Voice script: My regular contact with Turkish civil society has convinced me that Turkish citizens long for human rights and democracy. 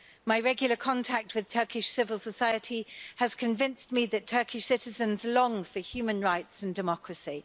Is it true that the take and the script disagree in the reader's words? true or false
false